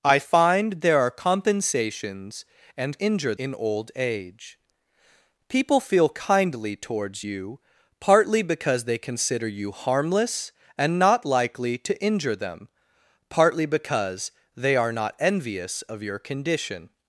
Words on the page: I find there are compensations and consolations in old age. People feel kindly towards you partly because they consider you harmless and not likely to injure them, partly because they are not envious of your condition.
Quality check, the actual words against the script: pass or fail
fail